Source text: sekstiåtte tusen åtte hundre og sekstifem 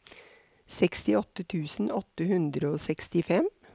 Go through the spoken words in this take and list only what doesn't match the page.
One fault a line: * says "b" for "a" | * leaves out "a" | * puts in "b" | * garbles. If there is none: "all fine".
all fine